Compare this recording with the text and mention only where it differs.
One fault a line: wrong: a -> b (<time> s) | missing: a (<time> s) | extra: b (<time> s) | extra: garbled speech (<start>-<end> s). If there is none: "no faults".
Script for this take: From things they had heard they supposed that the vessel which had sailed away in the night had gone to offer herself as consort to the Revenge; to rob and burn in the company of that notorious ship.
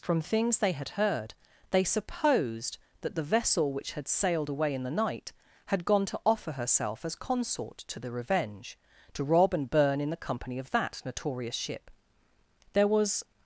extra: There was (12.7 s)